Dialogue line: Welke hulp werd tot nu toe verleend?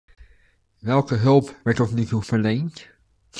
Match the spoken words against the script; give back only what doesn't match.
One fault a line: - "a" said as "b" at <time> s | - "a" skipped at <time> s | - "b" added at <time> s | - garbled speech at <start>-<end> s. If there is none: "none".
none